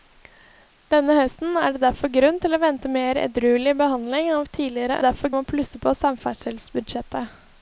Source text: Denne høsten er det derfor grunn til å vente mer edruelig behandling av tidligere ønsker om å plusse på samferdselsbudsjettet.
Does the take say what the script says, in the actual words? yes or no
no